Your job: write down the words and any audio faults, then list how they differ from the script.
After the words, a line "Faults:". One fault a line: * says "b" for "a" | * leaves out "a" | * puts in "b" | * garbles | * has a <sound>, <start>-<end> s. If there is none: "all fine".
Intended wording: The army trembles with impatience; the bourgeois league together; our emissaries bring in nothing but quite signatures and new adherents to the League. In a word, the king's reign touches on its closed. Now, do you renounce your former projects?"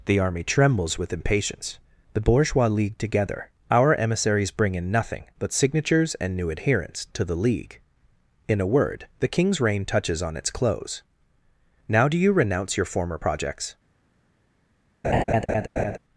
The army trembles with impatience; the bourgeois league together; our emissaries bring in nothing but signatures and new adherents to the League. In a word, the king's reign touches on its close. Now, do you renounce your former projects?"
Faults:
* leaves out "quite"
* says "close" for "closed"
* has a laugh, 15.0-16.0 s